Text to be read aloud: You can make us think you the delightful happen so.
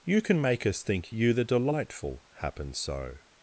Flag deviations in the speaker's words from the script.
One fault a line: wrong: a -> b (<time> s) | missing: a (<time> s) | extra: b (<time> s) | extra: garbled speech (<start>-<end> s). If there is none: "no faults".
no faults